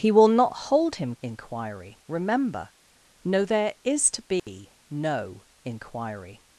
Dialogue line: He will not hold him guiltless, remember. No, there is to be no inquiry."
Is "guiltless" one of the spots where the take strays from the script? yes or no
yes